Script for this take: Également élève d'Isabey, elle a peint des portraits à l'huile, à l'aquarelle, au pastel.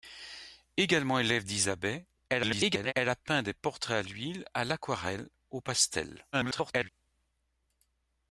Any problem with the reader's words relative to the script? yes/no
yes